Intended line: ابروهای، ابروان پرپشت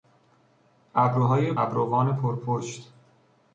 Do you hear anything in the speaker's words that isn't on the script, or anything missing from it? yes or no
no